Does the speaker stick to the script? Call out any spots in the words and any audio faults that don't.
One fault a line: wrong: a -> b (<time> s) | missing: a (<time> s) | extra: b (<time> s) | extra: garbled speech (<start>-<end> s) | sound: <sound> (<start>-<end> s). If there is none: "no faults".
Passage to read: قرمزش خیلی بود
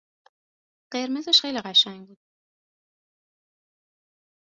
extra: قشنگ (1.6 s)